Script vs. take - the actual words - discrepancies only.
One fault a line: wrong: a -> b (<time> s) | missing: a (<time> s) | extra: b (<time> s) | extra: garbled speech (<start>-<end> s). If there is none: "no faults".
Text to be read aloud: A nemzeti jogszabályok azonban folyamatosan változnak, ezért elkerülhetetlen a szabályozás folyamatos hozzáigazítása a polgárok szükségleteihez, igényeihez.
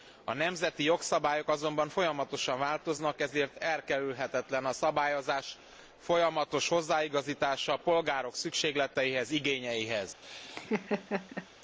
no faults